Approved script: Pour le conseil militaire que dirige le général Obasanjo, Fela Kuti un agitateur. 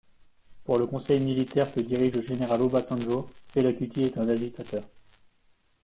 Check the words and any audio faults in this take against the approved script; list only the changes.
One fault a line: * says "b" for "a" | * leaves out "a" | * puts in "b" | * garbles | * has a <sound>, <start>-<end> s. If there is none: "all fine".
* puts in "est"